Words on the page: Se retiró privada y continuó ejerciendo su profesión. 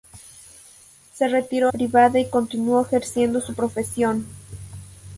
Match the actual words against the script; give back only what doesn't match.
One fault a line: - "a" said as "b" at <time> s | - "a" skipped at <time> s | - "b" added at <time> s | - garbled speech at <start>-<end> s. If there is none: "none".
none